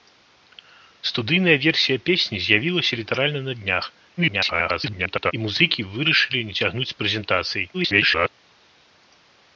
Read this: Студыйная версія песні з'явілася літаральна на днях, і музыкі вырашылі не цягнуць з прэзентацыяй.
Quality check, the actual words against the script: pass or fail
fail